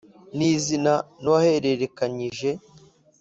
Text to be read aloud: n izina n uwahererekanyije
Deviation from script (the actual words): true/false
false